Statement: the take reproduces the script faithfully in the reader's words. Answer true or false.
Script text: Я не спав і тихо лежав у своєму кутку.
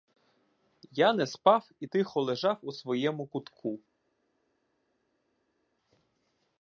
true